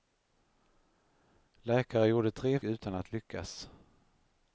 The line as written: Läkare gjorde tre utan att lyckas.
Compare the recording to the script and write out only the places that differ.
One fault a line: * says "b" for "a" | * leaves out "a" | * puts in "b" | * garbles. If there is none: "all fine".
all fine